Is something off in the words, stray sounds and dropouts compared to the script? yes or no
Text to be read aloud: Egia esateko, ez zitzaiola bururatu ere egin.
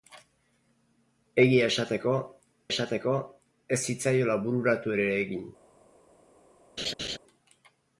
yes